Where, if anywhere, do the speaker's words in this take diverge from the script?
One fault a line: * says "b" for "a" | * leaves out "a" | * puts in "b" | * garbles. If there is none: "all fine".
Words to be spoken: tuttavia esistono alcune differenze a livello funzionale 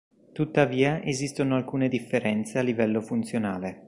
all fine